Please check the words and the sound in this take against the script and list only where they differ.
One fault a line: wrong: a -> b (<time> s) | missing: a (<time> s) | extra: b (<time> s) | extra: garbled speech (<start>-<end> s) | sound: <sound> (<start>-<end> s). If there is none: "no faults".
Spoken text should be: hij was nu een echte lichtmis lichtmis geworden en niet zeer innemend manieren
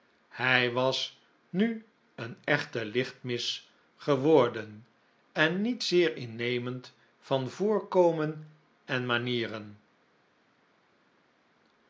missing: lichtmis (3.7 s)
extra: van voorkomen en (7.2 s)